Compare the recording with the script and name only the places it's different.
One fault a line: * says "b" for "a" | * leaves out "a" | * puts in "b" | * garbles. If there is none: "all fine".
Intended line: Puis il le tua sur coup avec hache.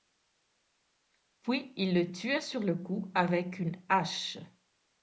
* puts in "le"
* puts in "une"